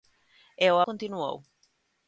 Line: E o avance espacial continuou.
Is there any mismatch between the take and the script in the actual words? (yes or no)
yes